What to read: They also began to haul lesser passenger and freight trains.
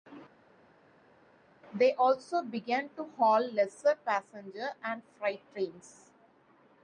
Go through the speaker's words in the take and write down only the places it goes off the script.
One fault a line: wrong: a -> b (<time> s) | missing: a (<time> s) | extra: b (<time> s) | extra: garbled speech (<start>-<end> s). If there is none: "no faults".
no faults